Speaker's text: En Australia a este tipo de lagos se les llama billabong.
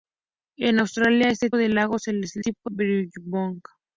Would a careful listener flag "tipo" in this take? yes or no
yes